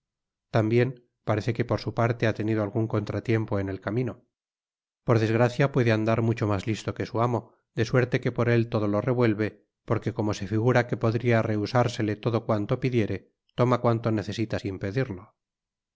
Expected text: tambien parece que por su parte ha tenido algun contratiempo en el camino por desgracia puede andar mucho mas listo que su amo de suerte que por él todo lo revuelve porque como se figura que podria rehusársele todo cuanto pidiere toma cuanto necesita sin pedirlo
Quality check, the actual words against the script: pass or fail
pass